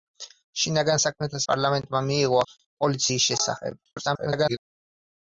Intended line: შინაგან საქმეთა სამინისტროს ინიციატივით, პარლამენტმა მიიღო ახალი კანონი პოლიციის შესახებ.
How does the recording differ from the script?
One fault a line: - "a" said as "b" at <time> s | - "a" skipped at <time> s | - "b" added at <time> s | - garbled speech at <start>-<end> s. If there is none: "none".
- "სამინისტროს ინიციატივით" skipped at 1.4 s
- "ახალი კანონი" skipped at 2.4 s
- garbled speech at 3.8-4.6 s